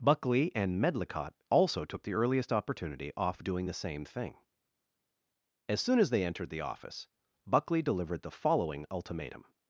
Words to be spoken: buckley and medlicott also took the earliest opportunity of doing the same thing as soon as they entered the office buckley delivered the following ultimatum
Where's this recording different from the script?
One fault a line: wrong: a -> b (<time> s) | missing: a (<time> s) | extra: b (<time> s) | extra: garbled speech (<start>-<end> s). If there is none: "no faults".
wrong: of -> off (3.1 s)